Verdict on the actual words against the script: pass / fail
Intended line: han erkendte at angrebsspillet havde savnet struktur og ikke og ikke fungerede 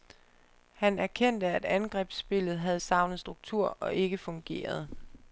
fail